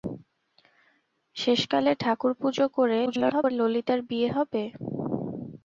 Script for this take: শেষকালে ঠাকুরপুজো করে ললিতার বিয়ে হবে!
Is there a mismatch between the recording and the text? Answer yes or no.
yes